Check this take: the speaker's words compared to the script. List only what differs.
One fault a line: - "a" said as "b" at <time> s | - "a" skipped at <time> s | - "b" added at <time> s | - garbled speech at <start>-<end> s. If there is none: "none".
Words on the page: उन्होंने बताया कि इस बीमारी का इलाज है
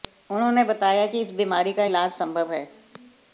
- "संभव" added at 2.1 s